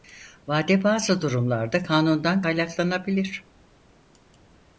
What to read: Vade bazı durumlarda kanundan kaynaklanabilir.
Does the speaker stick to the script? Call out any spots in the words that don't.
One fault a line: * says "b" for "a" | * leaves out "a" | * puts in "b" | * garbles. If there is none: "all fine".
all fine